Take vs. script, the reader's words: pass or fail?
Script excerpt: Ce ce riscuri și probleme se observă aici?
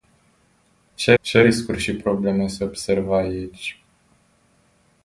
pass